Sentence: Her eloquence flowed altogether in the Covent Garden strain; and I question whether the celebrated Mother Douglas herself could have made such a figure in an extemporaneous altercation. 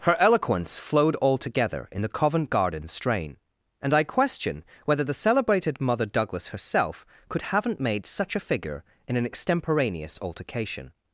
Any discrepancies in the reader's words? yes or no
yes